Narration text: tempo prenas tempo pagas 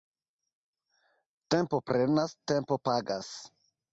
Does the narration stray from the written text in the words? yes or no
no